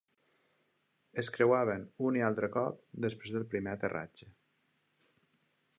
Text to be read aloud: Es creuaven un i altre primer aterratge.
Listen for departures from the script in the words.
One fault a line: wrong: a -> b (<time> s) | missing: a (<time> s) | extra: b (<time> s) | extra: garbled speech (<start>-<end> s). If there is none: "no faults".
extra: cop després del (2.6 s)